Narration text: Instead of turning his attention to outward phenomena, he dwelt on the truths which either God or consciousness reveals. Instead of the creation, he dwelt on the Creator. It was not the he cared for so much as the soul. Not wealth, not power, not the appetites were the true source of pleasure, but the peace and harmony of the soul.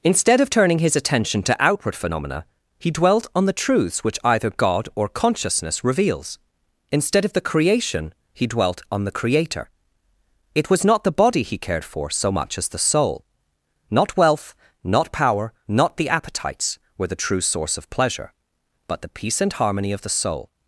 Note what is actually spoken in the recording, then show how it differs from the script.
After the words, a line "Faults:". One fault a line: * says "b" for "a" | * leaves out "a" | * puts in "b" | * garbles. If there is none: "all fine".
Instead of turning his attention to outward phenomena, he dwelt on the truths which either God or consciousness reveals. Instead of the creation, he dwelt on the Creator. It was not the body he cared for so much as the soul. Not wealth, not power, not the appetites were the true source of pleasure, but the peace and harmony of the soul.
Faults:
* puts in "body"